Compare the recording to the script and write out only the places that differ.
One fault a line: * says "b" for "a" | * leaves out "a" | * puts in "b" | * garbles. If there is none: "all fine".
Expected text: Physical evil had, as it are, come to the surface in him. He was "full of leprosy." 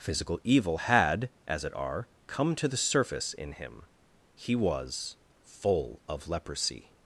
all fine